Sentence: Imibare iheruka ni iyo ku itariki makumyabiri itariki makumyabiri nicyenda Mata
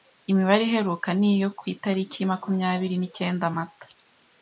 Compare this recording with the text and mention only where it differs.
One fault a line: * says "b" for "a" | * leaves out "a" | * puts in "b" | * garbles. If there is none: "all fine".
* leaves out "itariki makumyabiri"